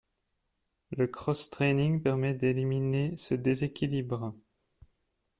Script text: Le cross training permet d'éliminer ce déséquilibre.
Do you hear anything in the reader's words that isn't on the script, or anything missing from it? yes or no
no